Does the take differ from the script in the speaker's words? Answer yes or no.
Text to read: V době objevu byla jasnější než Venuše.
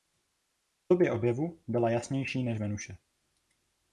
no